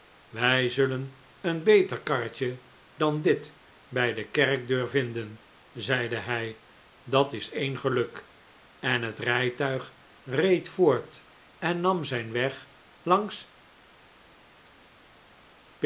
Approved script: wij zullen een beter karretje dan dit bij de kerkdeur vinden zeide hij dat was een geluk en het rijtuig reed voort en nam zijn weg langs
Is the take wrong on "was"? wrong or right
wrong